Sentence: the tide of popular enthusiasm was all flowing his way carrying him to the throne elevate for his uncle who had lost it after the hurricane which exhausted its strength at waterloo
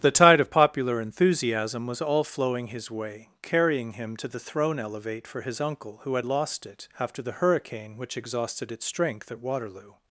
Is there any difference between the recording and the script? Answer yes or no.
no